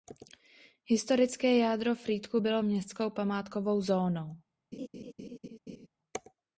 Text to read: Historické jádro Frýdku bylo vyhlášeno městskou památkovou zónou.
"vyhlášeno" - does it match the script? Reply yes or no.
no